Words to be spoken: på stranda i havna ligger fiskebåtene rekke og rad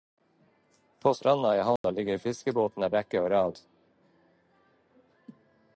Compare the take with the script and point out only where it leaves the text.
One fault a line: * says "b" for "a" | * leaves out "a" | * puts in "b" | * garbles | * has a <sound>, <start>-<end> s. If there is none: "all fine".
* has a dropout, 1.8-1.8 s